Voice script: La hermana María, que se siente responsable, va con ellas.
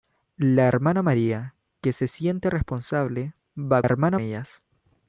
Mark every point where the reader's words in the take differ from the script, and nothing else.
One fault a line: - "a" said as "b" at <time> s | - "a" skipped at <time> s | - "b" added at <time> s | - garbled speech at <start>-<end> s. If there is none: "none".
- "con" said as "hermana" at 3.8 s